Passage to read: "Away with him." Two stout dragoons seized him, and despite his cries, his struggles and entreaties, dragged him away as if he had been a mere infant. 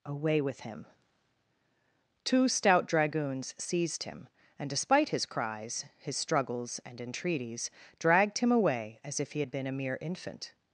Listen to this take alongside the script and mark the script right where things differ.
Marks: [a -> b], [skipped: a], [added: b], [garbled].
"Away with him." Two stout dragoons seized him, and despite his cries, his struggles and entreaties, dragged him away as if he had been a mere infant.